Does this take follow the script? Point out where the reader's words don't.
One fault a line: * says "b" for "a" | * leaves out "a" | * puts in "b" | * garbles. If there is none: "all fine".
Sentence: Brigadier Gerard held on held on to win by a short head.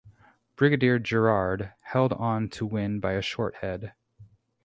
* leaves out "held on"